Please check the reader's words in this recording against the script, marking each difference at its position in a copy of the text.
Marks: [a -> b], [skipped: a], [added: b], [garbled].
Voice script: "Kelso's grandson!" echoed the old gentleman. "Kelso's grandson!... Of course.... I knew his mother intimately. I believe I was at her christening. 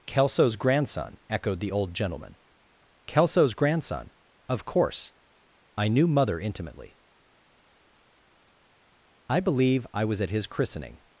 "Kelso's grandson!" echoed the old gentleman. "Kelso's grandson!... Of course.... I knew [skipped: his] mother intimately. I believe I was at [her -> his] christening.